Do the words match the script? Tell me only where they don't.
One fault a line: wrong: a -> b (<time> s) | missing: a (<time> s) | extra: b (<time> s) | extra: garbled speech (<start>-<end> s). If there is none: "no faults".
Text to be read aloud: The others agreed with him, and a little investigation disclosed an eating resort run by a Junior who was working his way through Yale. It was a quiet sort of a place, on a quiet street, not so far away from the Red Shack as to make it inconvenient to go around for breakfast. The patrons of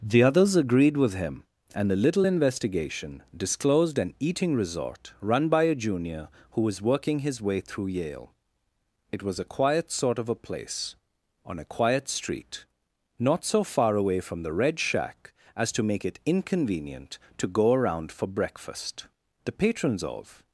no faults